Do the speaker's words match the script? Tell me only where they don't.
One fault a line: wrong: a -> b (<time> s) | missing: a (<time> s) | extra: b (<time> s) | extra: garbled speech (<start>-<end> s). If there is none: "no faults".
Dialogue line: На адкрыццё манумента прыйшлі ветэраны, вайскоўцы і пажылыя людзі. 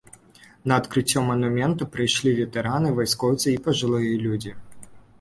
no faults